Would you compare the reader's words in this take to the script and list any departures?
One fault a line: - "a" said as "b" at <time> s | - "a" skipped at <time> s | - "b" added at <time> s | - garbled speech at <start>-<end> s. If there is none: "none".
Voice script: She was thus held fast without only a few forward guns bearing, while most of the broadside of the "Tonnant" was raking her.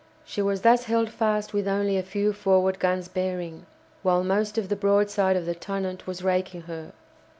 - "without" said as "with" at 1.5 s